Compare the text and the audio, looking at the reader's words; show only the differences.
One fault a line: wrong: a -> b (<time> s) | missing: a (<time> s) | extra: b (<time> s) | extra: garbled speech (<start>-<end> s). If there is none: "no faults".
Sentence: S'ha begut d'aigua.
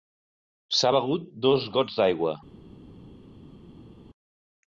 extra: dos gots (1.5 s)